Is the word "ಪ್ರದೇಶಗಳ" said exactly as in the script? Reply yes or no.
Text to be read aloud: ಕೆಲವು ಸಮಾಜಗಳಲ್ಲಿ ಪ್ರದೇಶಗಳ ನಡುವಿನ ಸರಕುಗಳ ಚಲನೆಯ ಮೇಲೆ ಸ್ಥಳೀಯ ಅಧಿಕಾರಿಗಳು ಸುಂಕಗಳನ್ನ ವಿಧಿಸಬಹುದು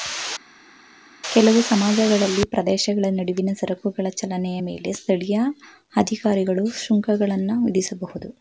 yes